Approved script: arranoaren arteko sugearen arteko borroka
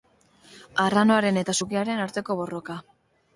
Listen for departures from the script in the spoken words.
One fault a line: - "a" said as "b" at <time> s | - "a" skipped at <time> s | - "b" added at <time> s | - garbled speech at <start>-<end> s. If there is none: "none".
- "arteko" said as "eta" at 1.4 s